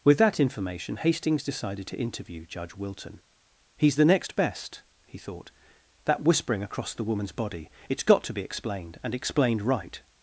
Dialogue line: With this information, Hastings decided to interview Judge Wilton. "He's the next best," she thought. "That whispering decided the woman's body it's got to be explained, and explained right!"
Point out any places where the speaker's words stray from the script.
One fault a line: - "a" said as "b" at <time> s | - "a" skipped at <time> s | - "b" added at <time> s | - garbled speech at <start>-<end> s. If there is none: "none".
- "this" said as "that" at 0.2 s
- "she" said as "he" at 5.0 s
- "decided" said as "across" at 6.6 s